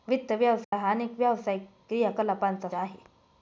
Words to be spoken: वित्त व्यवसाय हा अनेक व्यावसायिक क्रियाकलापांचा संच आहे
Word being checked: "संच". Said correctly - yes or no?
no